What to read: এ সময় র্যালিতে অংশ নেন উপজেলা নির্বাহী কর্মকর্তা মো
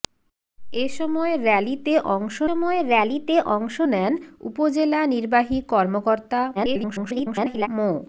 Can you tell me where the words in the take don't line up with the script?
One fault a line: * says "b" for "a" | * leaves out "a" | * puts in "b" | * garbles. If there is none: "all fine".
* puts in "সময় র্যালিতে অংশ"
* garbles